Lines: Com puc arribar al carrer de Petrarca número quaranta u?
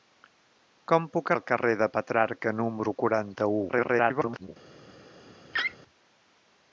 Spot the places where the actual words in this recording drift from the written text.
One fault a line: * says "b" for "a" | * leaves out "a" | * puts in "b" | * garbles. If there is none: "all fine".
* leaves out "arribar"
* garbles